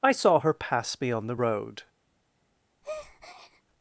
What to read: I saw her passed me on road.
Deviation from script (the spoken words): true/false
true